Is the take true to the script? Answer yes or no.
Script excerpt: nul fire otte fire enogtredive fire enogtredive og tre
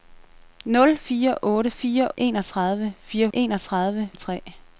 yes